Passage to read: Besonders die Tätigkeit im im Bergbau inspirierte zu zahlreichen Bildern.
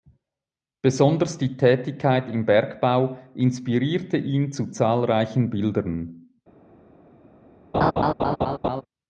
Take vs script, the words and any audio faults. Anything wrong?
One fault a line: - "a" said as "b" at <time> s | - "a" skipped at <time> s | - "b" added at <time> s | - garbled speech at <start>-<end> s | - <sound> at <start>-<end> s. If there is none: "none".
- "im" skipped at 2.5 s
- "ihn" added at 4.2 s
- laugh at 7.7-8.8 s